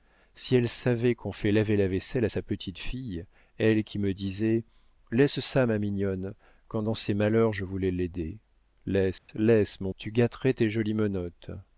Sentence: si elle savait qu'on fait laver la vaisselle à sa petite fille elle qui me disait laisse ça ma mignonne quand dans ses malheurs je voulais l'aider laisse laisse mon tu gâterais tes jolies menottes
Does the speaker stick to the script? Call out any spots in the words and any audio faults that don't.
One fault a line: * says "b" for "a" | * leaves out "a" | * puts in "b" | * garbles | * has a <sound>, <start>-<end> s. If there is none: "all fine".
* has a dropout, 9.2-9.3 s